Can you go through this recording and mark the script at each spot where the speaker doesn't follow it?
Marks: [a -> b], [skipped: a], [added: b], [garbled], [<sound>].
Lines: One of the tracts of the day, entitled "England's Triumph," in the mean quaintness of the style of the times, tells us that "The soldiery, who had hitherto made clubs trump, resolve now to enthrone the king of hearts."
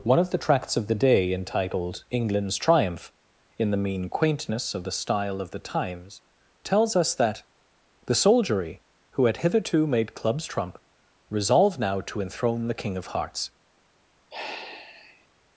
One of the tracts of the day, entitled "England's Triumph," in the mean quaintness of the style of the times, tells us that "The soldiery, who had hitherto made clubs trump, resolve now to enthrone the king of hearts." [sigh]